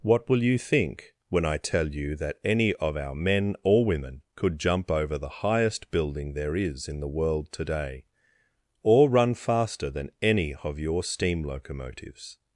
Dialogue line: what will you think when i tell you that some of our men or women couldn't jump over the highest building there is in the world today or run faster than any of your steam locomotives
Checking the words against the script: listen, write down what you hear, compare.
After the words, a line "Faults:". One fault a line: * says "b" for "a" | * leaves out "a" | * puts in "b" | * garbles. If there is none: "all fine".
what will you think when i tell you that any of our men or women could jump over the highest building there is in the world today or run faster than any of your steam locomotives
Faults:
* says "any" for "some"
* says "could" for "couldn't"